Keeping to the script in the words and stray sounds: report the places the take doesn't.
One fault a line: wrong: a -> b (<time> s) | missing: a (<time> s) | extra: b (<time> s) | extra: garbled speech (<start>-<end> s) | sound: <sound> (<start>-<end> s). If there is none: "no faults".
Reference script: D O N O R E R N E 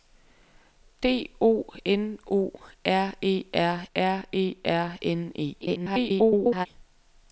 extra: R E R (3.9 s)
extra: garbled speech (5.6-6.7 s)